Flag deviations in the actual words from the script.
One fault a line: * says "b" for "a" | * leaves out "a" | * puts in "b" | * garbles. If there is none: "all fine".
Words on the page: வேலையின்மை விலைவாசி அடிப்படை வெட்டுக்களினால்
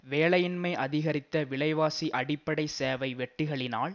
* puts in "அதிகரித்த"
* puts in "சேவை"